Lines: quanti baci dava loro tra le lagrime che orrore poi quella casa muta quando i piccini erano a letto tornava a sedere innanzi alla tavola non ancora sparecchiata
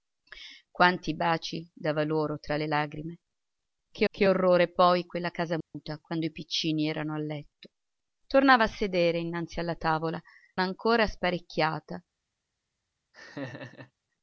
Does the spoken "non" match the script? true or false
false